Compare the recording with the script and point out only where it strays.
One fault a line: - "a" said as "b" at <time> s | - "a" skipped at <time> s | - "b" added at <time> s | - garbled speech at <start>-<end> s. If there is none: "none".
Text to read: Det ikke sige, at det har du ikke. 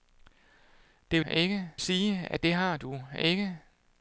none